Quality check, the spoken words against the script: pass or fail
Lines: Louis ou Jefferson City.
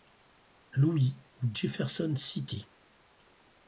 pass